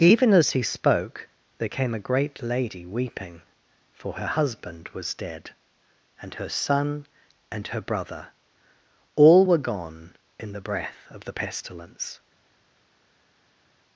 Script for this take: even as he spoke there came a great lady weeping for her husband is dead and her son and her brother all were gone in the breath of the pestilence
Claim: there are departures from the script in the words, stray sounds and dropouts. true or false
true